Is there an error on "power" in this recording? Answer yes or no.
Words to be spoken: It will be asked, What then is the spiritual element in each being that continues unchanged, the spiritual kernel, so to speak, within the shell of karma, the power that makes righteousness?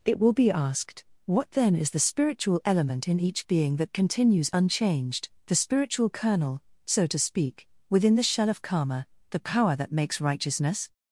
no